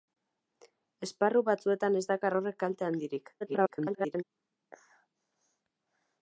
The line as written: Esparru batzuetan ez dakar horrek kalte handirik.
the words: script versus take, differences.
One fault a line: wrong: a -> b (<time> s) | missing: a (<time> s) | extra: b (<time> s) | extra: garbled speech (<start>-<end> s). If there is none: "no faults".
extra: garbled speech (3.4-4.2 s)